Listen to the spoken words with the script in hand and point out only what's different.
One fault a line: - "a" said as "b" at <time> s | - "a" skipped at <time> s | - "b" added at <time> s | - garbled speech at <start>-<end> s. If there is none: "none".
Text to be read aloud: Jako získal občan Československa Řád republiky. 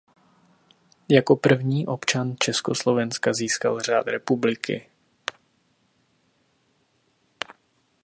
- "získal" said as "první" at 1.3 s
- "získal" added at 3.3 s